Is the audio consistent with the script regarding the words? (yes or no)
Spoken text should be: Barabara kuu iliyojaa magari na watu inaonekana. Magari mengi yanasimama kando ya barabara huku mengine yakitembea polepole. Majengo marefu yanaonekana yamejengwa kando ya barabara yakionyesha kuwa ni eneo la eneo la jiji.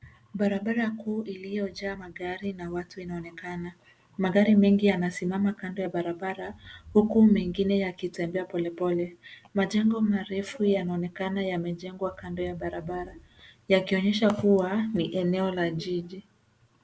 no